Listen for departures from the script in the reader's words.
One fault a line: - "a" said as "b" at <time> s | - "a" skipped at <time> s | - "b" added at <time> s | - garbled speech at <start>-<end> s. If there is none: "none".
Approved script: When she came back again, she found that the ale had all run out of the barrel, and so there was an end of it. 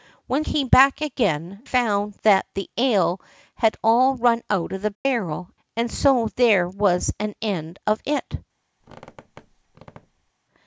- "she" skipped at 0.5 s
- "she" skipped at 1.6 s